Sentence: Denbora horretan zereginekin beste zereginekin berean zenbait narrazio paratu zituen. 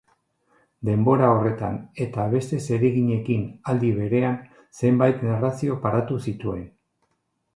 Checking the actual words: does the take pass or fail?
fail